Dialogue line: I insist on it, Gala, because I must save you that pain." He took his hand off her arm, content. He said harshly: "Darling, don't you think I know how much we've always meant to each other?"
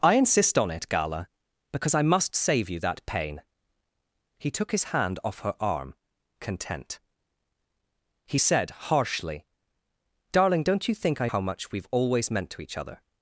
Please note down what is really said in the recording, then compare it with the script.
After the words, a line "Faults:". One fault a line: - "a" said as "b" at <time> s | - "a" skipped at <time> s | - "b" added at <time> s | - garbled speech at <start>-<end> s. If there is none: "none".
I insist on it, Gala, because I must save you that pain." He took his hand off her arm, content. He said harshly: "Darling, don't you think I how much we've always meant to each other?"
Faults:
- "know" skipped at 11.3 s